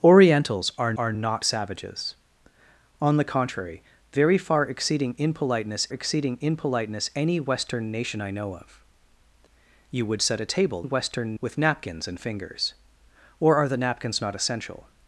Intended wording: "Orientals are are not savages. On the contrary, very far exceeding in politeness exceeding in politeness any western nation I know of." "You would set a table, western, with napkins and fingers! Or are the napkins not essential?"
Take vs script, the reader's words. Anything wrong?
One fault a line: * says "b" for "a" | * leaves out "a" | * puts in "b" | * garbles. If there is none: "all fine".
all fine